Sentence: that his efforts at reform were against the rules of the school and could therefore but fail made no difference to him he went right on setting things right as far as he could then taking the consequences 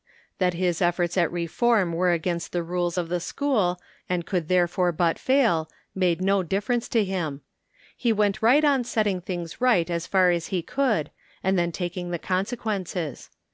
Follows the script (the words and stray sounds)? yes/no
no